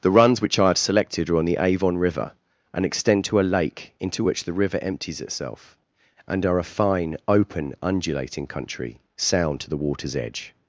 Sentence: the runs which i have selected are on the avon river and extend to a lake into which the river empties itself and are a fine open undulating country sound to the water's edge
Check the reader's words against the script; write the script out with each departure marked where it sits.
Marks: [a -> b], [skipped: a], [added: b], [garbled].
the runs which i have selected are on the avon river and extend to a lake into which the river empties itself and are a fine open undulating country sound to the water's edge